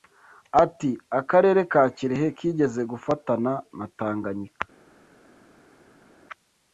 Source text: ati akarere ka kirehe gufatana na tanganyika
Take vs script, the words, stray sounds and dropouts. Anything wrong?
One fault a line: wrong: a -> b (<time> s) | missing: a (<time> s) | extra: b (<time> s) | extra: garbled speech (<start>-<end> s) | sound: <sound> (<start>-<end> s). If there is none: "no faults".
extra: kigeze (2.4 s)